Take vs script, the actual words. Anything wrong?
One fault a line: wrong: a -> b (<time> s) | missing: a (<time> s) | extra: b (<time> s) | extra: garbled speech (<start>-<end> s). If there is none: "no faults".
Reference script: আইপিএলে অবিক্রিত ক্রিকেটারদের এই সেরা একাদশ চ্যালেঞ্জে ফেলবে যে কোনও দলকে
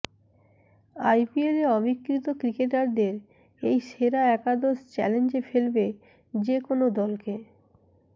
no faults